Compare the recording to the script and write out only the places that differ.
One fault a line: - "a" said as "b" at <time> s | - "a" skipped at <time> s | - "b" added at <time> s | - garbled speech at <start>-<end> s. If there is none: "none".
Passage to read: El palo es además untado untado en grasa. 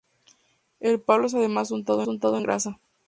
none